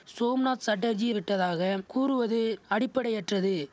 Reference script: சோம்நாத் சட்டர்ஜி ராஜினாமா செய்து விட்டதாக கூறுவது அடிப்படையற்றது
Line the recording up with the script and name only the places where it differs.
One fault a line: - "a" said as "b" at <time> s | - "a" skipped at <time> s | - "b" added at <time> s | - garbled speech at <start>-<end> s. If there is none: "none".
- "ராஜினாமா செய்து" skipped at 1.1 s